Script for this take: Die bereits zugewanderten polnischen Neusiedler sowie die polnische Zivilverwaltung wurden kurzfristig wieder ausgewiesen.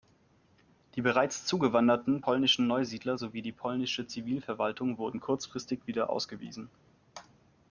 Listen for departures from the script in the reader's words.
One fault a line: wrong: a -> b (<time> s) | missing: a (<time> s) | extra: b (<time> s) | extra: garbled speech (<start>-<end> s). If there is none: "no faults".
no faults